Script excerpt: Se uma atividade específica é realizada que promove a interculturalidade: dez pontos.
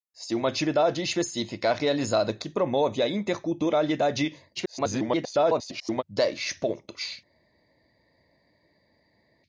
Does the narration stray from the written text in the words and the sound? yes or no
yes